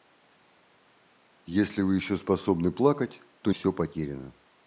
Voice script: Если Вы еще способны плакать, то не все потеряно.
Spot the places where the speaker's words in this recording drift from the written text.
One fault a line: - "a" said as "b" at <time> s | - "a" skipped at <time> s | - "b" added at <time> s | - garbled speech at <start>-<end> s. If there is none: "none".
- "не" skipped at 3.5 s